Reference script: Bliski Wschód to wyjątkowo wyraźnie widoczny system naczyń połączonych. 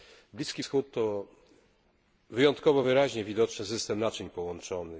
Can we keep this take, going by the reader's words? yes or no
yes